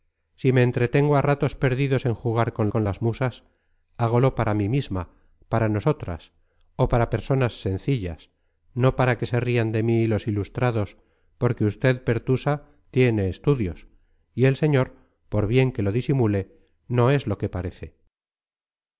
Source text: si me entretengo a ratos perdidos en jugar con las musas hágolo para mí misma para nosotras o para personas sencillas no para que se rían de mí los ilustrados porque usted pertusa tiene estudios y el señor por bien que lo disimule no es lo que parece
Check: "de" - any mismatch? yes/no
no